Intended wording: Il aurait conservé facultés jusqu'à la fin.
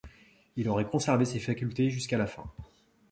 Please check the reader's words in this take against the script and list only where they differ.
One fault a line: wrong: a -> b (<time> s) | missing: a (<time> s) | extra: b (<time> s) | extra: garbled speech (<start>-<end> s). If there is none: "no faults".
extra: ses (1.2 s)